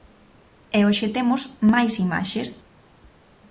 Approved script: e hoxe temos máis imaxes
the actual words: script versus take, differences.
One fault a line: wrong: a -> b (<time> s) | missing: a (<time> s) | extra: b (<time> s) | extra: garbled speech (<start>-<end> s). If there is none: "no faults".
no faults